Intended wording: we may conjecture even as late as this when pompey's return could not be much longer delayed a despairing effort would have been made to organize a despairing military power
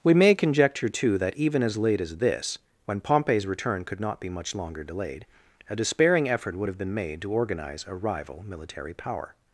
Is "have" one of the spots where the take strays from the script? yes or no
no